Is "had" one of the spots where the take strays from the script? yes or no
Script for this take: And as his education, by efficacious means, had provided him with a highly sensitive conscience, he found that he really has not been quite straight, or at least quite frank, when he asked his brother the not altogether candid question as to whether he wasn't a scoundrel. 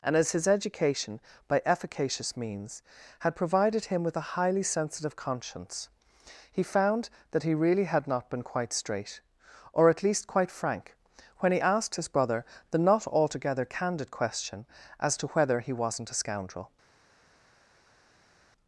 no